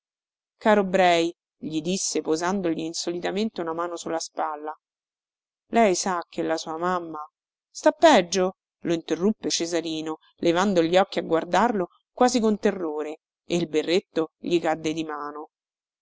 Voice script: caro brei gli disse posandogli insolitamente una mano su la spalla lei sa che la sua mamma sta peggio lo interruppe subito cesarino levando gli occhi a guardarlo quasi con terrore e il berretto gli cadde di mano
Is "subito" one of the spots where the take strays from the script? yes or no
yes